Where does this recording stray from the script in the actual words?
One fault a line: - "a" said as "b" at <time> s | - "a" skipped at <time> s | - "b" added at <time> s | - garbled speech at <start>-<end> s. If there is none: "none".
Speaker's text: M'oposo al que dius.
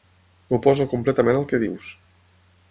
- "completament" added at 0.9 s